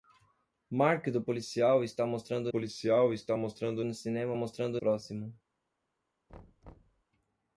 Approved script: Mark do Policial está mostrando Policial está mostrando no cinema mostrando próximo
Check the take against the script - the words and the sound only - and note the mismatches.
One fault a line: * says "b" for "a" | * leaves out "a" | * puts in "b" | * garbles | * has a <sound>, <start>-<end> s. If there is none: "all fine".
* has a thud, 6.3-7.0 s